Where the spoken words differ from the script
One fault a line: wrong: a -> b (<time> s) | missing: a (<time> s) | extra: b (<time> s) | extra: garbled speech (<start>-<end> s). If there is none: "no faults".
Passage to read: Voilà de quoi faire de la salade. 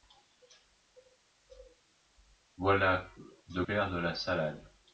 missing: quoi (3.6 s)